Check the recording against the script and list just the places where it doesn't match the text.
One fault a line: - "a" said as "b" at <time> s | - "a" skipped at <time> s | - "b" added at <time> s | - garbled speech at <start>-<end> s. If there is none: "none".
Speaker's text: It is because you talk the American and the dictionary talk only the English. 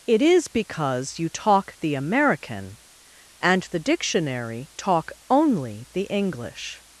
none